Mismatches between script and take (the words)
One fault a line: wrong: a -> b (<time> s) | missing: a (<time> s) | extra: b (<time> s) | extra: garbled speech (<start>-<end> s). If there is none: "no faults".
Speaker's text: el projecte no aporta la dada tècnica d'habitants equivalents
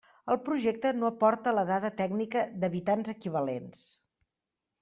no faults